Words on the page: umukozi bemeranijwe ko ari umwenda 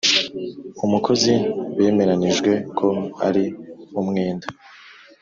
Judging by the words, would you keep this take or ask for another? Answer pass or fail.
pass